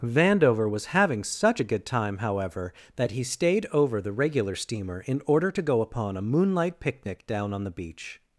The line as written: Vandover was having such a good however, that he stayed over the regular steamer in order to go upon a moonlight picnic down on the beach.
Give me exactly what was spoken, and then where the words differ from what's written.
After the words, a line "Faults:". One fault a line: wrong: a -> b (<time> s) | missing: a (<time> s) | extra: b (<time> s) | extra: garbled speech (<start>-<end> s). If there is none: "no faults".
Vandover was having such a good time, however, that he stayed over the regular steamer in order to go upon a moonlight picnic down on the beach.
Faults:
extra: time (1.8 s)